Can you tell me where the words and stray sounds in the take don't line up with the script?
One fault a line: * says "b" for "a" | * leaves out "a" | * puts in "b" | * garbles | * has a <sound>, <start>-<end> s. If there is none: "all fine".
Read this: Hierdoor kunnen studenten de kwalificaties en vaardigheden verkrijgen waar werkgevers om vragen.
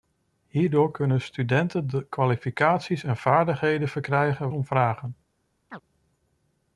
* leaves out "waar werkgevers"
* has a chirp, 5.7-5.8 s